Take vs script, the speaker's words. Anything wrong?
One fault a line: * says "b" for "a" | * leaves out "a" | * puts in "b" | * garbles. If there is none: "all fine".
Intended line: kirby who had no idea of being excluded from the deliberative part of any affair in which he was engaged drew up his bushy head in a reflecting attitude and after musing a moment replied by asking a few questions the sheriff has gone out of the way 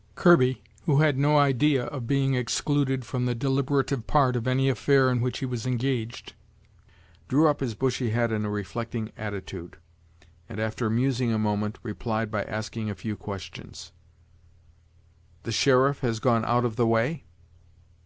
all fine